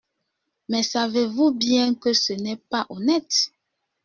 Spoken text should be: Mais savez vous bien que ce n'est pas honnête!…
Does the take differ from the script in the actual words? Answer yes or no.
no